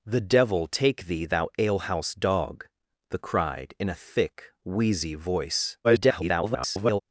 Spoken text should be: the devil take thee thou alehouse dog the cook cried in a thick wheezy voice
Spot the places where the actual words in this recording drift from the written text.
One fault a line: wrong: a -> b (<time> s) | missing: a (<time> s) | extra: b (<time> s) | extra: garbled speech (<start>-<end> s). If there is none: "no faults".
missing: cook (3.2 s)
extra: garbled speech (5.8-7.0 s)